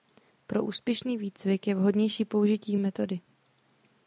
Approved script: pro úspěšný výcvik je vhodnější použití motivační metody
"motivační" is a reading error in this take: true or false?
true